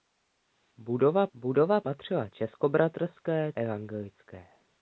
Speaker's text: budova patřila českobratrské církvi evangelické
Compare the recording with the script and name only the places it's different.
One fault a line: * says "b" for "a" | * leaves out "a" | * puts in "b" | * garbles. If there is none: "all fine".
* puts in "budova"
* leaves out "církvi"